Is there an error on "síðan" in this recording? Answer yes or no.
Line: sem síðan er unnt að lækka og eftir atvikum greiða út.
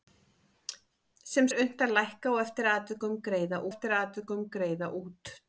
yes